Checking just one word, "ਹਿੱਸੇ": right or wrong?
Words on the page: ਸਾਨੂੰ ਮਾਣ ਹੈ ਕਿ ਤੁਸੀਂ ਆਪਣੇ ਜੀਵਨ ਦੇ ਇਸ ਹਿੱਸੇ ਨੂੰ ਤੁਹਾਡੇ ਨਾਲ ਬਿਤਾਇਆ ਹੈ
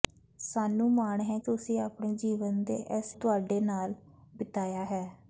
wrong